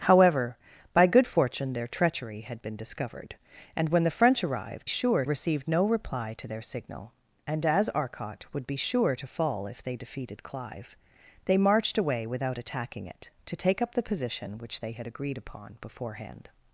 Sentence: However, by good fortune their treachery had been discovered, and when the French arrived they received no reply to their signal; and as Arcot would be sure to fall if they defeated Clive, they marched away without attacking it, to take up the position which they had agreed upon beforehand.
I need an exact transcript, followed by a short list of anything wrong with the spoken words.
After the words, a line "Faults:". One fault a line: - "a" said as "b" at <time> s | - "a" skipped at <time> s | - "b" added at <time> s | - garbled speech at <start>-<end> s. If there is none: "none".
However, by good fortune their treachery had been discovered, and when the French arrived sure received no reply to their signal; and as Arcot would be sure to fall if they defeated Clive, they marched away without attacking it, to take up the position which they had agreed upon beforehand.
Faults:
- "they" said as "sure" at 4.8 s